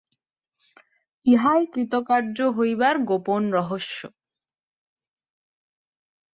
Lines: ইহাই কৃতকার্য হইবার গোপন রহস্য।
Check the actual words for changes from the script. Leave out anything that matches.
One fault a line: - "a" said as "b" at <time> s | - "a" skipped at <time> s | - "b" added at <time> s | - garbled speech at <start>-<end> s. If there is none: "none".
none